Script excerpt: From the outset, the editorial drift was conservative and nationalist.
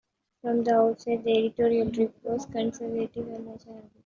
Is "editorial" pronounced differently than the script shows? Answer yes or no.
no